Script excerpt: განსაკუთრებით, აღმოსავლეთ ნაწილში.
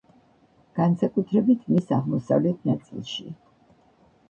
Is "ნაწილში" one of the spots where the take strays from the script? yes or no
no